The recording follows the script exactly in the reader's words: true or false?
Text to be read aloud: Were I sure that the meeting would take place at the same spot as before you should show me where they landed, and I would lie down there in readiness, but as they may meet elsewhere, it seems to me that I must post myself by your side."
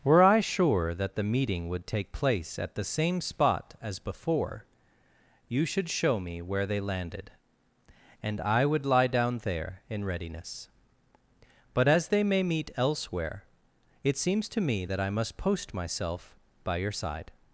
true